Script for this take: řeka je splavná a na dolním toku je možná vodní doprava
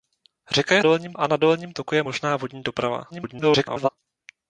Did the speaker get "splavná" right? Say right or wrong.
wrong